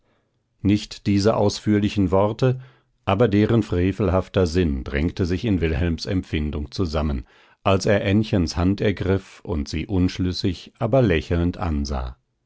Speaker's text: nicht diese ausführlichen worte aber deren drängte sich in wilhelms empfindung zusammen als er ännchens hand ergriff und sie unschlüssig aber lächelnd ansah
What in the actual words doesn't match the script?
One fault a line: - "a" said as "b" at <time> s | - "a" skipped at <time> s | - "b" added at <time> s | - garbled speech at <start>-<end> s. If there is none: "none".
- "frevelhafter sinn" added at 3.6 s